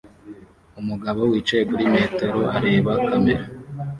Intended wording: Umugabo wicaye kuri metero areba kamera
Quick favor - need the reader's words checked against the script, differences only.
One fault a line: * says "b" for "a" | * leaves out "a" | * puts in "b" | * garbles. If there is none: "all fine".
all fine